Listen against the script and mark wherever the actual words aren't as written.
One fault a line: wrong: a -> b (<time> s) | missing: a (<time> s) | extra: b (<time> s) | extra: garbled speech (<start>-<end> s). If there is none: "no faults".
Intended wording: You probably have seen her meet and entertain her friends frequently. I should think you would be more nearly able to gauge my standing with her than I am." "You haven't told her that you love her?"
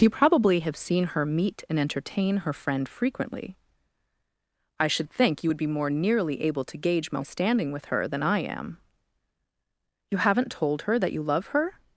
wrong: friends -> friend (2.5 s)